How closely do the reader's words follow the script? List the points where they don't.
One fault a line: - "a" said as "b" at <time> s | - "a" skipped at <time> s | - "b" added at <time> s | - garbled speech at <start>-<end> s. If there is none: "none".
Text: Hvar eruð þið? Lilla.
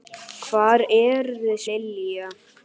none